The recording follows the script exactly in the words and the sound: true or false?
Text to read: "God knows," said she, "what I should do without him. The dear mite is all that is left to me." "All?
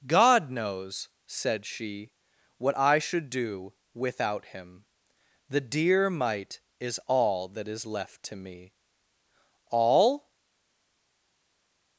true